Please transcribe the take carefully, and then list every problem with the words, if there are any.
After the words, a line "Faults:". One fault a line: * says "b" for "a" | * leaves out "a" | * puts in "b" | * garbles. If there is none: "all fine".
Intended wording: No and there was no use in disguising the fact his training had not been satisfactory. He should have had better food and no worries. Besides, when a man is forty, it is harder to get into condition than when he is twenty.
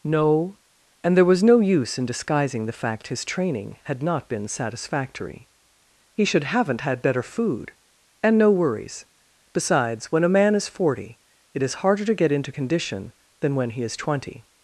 No and there was no use in disguising the fact his training had not been satisfactory. He should haven't had better food and no worries. Besides, when a man is forty, it is harder to get into condition than when he is twenty.
Faults:
* says "haven't" for "have"